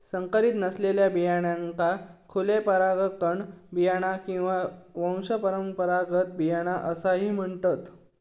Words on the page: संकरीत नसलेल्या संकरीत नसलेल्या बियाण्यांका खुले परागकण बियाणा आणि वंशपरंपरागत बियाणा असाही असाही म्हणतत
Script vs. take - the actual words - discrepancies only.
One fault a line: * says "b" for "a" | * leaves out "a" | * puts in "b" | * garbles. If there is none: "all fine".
* leaves out "संकरीत नसलेल्या"
* says "किंवा" for "आणि"
* leaves out "असाही"